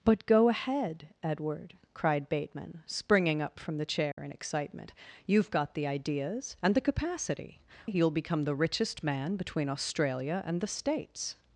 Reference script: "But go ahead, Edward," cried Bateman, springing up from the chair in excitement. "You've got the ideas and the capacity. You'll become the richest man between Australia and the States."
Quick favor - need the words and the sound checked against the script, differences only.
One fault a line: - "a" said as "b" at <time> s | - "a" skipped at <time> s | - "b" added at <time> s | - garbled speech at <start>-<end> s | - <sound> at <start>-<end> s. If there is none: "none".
- dropout at 4.1-4.2 s